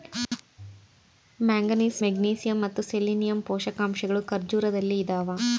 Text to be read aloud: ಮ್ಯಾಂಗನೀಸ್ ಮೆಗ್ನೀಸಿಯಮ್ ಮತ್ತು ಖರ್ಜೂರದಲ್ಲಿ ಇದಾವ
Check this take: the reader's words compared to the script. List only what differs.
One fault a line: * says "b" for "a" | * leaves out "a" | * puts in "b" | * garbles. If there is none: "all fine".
* puts in "ಸೆಲೆನಿಯಮ್ ಪೋಷಕಾಂಶಗಳು"